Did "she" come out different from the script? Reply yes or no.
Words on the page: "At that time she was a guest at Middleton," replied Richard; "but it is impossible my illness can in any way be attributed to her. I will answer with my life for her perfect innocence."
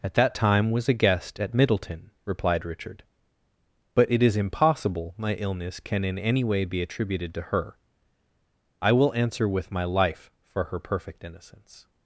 yes